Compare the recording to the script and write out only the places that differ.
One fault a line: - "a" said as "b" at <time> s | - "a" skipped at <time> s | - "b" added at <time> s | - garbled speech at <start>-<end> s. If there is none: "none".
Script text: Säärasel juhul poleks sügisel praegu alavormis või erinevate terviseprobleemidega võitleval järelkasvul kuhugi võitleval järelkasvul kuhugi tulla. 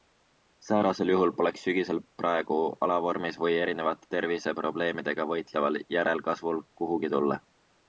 - "võitleval järelkasvul kuhugi" skipped at 7.1 s